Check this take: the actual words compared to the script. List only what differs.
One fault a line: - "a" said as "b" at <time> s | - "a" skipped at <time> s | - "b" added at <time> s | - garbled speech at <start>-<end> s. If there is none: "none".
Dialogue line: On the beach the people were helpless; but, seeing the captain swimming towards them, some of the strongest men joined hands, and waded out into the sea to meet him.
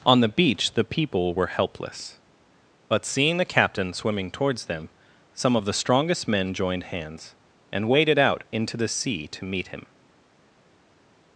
none